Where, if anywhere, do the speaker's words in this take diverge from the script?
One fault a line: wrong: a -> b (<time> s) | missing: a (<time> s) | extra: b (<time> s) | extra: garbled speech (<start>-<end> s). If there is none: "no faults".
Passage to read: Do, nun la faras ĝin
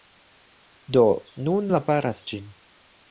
no faults